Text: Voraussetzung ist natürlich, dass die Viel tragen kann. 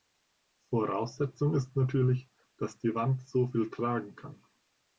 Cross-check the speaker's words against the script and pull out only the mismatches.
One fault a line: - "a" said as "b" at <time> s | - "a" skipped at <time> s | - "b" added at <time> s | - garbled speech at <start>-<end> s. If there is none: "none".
- "Wand so" added at 3.0 s